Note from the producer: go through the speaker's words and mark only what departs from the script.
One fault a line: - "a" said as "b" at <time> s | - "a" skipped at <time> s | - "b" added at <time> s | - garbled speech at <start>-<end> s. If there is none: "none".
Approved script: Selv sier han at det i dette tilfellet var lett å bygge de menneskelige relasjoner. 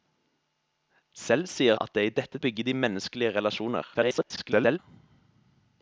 - "han" skipped at 1.8 s
- "tilfellet var lett" skipped at 2.4 s
- garbled speech at 3.9-4.8 s